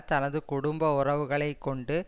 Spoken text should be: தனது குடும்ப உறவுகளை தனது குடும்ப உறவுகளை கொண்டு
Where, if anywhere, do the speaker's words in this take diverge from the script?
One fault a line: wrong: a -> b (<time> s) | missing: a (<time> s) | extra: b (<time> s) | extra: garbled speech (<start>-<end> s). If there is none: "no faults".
missing: தனது குடும்ப உறவுகளை (1.5 s)